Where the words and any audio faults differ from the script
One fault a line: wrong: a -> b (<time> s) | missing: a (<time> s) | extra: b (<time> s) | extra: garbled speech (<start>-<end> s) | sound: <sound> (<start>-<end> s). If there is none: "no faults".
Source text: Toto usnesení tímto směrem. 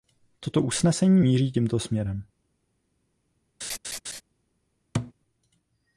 extra: míří (1.2 s)
sound: laugh (3.6-4.2 s)
sound: thud (4.9-5.1 s)